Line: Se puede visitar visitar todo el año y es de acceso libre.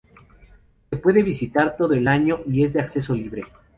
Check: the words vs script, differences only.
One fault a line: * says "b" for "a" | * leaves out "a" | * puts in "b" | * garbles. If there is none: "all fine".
* leaves out "visitar"